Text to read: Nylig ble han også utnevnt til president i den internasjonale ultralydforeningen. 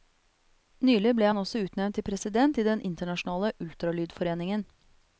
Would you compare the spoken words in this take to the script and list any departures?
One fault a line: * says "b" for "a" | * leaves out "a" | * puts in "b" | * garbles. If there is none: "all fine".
all fine